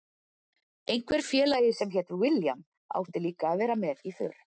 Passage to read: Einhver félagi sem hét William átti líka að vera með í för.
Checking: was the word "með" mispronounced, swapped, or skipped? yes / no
no